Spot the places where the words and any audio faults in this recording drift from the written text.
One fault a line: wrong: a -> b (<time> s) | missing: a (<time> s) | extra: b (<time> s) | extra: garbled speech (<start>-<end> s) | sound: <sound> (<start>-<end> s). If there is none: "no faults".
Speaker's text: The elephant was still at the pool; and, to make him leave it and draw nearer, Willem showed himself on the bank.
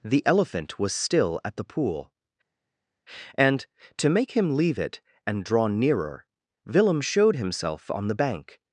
no faults